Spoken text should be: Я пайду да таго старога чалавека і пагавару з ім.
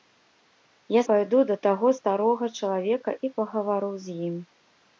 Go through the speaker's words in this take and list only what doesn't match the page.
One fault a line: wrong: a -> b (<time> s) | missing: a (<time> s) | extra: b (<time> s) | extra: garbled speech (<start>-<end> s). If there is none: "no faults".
no faults